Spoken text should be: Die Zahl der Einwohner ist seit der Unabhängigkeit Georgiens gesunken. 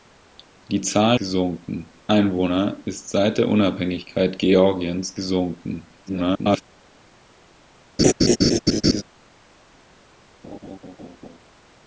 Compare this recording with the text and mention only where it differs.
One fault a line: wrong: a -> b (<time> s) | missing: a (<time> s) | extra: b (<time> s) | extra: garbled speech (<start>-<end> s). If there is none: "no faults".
wrong: der -> gesunken (1.2 s)
extra: garbled speech (6.1-6.6 s)